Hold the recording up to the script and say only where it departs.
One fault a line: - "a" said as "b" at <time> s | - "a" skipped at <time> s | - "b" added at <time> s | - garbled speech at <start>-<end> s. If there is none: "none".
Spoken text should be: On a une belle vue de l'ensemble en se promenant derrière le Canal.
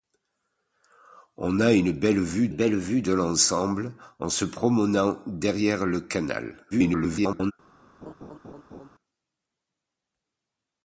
- "belle vue" added at 2.5 s
- garbled speech at 6.7-7.5 s